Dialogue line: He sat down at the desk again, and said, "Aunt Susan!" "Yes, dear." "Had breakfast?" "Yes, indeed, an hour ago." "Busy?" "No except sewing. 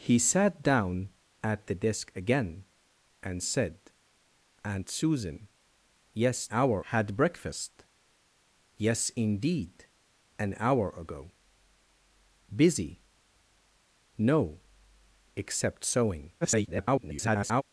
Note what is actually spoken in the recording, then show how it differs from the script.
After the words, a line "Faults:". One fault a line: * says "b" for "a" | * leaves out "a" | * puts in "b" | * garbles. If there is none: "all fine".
He sat down at the desk again, and said, "Aunt Susan!" "Yes, hour." "Had breakfast?" "Yes, indeed, an hour ago." "Busy?" "No except sewing. [garbled]
Faults:
* says "hour" for "dear"
* garbles